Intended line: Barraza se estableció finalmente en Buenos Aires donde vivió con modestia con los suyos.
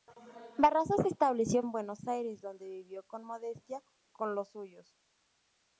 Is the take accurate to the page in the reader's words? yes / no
no